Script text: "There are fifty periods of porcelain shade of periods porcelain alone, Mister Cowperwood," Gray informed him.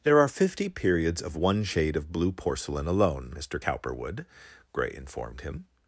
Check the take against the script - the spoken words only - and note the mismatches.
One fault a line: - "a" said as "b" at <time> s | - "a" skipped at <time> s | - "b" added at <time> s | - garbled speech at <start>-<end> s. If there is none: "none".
- "porcelain" said as "one" at 1.4 s
- "periods" said as "blue" at 2.1 s